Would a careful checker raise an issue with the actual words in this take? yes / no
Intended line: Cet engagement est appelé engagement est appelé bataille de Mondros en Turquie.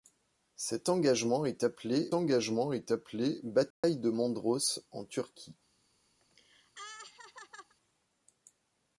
no